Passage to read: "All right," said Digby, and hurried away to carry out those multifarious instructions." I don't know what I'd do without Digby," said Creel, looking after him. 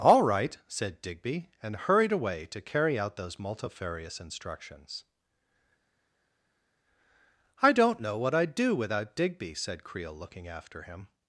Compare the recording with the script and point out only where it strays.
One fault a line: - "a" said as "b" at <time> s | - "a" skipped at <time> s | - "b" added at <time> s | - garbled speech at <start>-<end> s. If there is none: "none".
none